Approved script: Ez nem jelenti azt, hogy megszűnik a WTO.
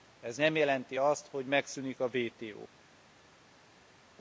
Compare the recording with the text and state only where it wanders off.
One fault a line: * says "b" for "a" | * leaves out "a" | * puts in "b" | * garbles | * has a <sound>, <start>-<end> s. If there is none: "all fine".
all fine